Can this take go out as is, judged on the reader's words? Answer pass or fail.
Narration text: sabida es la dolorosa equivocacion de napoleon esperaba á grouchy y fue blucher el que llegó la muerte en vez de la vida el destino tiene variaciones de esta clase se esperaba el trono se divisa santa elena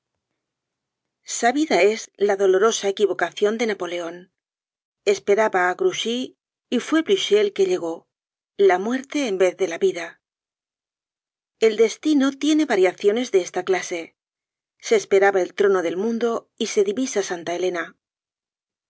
fail